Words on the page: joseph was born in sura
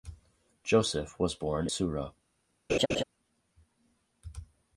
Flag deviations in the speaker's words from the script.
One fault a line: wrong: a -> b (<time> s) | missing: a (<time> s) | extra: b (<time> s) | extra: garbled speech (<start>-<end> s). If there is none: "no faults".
missing: in (1.7 s)